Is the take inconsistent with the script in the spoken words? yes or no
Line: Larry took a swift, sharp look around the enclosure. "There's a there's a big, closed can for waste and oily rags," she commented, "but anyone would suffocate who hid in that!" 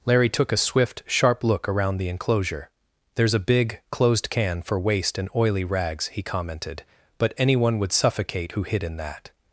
yes